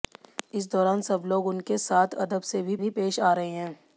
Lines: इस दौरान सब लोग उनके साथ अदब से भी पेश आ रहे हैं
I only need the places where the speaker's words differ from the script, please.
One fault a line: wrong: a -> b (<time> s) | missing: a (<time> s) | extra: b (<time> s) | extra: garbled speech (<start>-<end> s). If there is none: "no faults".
extra: भी (2.8 s)